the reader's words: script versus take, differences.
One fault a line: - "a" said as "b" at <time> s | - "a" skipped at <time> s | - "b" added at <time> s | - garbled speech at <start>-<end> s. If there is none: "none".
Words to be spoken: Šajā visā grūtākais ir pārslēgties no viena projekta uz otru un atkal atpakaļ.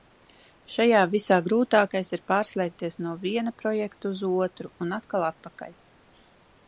none